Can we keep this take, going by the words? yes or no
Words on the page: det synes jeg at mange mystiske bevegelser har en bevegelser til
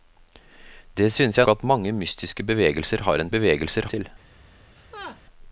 yes